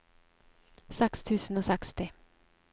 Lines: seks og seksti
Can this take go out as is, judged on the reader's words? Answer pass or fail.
fail